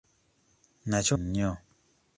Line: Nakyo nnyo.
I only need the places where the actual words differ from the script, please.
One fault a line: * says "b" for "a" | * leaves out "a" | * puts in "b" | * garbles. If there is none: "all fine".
all fine